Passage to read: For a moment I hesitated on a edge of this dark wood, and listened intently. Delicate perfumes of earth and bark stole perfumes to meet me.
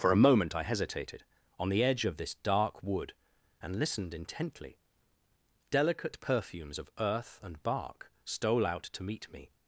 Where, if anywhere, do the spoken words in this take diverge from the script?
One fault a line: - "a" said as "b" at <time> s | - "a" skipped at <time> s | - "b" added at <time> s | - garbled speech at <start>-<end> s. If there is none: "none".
- "a" said as "the" at 1.7 s
- "perfumes" said as "out" at 8.6 s